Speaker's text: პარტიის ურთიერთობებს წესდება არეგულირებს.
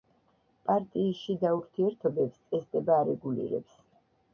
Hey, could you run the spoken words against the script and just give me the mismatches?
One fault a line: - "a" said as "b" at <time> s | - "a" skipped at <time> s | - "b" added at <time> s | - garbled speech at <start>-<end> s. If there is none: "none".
- "შიდა" added at 1.3 s